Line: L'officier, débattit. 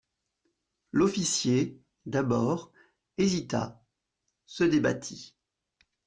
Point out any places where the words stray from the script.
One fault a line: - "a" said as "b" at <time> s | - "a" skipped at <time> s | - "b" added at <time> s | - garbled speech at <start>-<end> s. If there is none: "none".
- "d'abord hésita se" added at 2.1 s